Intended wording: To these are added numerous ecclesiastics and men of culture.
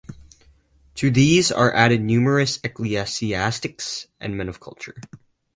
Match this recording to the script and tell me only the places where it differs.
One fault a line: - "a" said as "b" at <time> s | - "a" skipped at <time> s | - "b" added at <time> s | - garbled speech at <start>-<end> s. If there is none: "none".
none